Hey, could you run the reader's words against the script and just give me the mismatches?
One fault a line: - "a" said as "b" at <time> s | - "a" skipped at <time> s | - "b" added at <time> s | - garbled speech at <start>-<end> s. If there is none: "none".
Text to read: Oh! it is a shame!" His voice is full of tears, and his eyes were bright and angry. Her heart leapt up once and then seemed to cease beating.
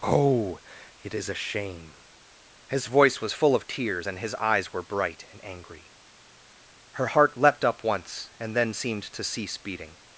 - "is" said as "was" at 3.2 s